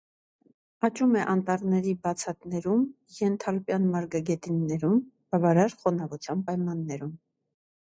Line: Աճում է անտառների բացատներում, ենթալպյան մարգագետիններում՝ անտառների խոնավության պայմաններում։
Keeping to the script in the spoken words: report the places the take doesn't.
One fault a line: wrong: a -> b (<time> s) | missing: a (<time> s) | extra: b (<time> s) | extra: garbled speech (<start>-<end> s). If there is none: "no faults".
wrong: անտառների -> բավարար (5.4 s)